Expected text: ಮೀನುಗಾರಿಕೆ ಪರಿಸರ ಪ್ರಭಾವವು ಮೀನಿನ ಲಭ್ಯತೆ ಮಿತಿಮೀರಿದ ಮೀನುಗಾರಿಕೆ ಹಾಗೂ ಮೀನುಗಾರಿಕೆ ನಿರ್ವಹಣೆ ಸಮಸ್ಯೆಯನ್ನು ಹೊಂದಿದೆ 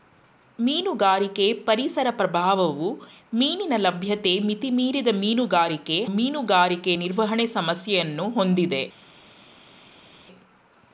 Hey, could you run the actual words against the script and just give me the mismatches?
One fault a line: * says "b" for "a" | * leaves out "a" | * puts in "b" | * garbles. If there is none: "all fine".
* leaves out "ಹಾಗೂ"